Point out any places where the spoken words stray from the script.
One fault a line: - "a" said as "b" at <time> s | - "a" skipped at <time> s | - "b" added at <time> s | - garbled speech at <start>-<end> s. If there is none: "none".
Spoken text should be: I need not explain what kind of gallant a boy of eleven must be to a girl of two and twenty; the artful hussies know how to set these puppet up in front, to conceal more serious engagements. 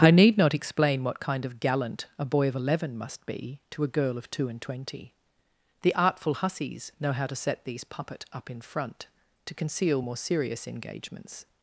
none